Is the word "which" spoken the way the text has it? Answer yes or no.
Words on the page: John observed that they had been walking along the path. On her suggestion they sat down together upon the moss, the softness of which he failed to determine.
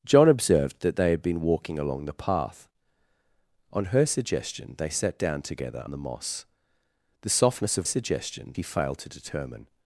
no